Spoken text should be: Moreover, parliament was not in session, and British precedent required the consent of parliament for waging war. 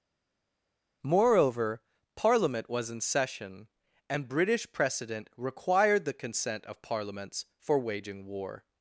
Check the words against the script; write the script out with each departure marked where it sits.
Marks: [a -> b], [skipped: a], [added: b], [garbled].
Moreover, parliament was [skipped: not] in session, and British precedent required the consent of [parliament -> parliaments] for waging war.